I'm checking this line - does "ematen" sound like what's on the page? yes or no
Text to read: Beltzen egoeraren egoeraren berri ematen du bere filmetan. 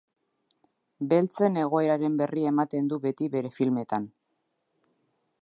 yes